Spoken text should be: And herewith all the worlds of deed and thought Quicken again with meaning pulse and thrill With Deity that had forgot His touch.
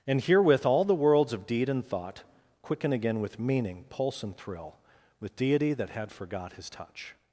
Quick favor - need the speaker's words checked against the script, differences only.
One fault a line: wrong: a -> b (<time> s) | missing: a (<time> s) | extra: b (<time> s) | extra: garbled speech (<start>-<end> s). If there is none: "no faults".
no faults